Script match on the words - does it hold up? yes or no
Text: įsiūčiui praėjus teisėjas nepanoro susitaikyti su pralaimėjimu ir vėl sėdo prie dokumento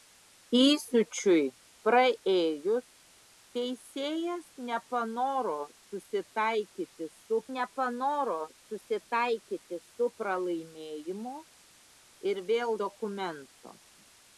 no